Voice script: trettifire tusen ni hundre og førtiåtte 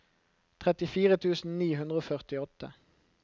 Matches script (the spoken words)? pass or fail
pass